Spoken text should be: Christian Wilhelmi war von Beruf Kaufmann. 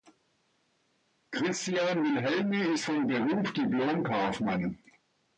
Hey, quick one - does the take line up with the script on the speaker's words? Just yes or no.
no